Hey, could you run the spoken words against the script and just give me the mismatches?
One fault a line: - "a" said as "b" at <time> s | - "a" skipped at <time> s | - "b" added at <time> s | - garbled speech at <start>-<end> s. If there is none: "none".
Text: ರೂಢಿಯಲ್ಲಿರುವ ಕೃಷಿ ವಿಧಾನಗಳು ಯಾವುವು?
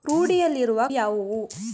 - "ಕೃಷಿ ವಿಧಾನಗಳು" skipped at 0.8 s